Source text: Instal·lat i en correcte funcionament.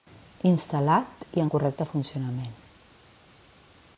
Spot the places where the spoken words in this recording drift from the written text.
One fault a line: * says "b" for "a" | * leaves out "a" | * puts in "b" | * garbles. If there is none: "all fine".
all fine